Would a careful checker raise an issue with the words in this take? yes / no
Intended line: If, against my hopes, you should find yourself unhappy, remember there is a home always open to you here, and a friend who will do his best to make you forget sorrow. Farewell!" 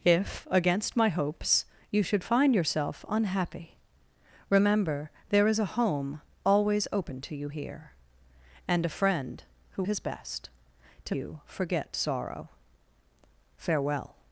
yes